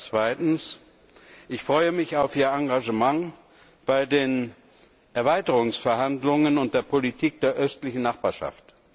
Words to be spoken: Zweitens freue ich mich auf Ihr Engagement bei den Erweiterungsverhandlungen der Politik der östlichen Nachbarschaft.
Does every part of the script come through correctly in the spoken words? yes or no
no